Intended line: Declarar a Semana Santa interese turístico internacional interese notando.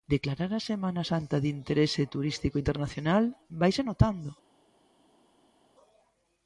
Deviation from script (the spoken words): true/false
true